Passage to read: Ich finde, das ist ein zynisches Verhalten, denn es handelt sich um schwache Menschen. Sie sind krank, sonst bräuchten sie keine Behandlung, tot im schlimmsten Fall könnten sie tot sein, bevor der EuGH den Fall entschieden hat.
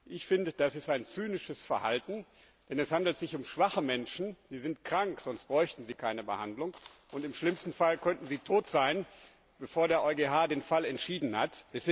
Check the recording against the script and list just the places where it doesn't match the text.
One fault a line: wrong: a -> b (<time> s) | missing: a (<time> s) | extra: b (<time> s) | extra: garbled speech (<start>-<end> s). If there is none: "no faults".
wrong: tot -> und (7.1 s)